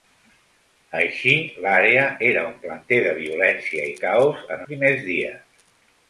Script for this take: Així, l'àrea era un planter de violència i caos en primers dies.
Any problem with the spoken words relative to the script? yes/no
no